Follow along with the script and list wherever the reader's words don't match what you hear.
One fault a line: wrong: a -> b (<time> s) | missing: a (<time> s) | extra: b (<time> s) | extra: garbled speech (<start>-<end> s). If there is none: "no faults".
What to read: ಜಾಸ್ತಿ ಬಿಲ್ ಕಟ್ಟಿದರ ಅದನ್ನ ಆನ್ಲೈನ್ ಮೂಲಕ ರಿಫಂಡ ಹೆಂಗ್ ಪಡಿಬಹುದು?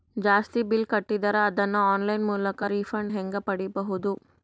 no faults